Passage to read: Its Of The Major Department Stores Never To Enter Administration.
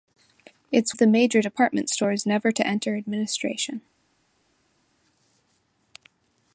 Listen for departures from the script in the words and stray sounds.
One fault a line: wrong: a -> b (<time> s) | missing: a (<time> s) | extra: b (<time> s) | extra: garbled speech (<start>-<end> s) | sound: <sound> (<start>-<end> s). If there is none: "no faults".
no faults